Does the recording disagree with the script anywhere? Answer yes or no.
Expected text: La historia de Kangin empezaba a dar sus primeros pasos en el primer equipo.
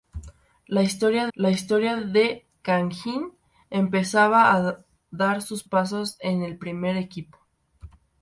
yes